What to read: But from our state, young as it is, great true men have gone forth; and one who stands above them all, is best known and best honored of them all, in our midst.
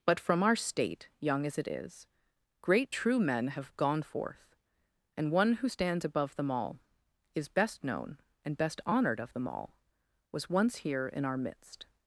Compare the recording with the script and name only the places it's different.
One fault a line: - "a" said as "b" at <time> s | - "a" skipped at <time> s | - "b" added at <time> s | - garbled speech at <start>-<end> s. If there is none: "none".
- "was once here" added at 10.3 s